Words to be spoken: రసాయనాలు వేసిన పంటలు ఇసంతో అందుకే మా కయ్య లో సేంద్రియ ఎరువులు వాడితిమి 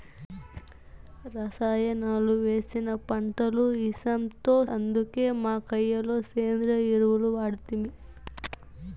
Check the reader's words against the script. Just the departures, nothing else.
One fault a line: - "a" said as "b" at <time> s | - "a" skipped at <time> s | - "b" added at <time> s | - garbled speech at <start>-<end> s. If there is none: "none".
none